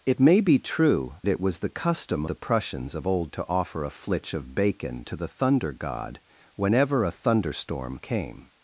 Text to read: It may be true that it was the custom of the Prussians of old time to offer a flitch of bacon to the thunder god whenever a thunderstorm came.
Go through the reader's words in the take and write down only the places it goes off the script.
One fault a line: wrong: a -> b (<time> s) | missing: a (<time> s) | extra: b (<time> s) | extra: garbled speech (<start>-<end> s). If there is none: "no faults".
missing: that (1.2 s)
missing: of (2.2 s)
missing: time (3.3 s)